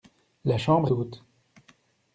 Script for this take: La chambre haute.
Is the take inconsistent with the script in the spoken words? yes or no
no